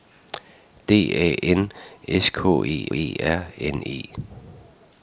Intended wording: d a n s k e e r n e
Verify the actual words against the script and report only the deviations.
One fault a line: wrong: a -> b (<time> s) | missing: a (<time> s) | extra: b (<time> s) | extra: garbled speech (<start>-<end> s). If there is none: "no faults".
no faults